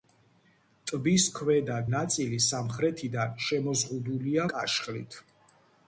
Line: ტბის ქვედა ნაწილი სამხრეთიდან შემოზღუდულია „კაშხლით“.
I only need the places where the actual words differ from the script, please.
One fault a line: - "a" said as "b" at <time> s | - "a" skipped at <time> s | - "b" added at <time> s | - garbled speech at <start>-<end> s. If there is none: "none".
none